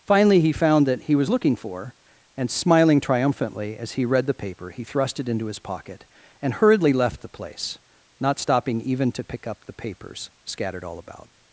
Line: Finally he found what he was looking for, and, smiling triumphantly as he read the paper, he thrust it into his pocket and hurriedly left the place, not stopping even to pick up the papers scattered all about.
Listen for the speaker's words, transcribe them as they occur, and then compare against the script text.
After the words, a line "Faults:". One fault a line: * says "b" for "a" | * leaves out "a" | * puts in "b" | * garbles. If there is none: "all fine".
Finally he found that he was looking for, and, smiling triumphantly as he read the paper, he thrust it into his pocket and hurriedly left the place, not stopping even to pick up the papers scattered all about.
Faults:
* says "that" for "what"